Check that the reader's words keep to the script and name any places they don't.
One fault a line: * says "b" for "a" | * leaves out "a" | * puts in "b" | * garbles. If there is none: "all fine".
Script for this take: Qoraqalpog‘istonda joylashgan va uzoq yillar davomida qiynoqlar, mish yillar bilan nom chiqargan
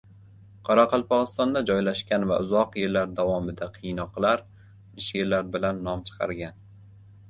all fine